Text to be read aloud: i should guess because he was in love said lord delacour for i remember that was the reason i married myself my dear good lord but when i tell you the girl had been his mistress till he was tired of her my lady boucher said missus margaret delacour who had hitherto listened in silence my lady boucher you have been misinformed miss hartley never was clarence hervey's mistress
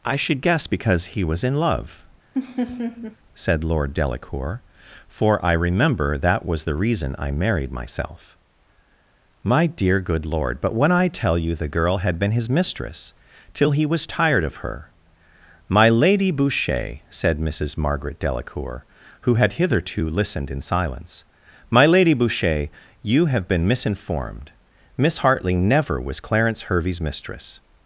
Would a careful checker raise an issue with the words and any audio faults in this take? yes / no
yes